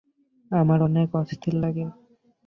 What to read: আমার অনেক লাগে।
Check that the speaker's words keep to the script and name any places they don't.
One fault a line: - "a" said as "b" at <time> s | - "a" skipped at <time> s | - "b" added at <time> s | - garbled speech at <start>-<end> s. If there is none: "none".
- "অস্থির" added at 1.2 s